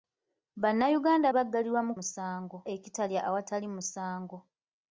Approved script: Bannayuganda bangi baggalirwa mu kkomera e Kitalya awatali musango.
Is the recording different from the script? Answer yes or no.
yes